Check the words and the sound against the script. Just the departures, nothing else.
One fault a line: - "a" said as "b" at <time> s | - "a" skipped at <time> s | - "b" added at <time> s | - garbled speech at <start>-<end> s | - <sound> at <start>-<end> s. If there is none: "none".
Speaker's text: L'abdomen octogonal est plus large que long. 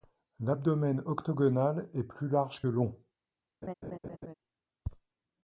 - "que" skipped at 2.6 s
- laugh at 3.6-4.3 s